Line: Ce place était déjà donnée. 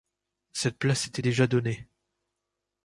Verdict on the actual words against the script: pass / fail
fail